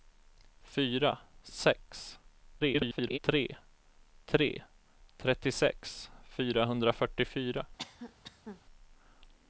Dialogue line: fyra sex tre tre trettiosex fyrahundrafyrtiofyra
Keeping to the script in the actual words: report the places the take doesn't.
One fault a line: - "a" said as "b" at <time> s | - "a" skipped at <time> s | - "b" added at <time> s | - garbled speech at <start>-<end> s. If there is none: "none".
- garbled speech at 2.6-3.2 s